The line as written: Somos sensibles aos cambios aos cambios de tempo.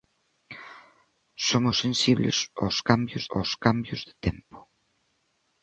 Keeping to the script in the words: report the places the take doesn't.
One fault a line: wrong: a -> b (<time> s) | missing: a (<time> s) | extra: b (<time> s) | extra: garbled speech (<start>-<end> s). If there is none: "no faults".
no faults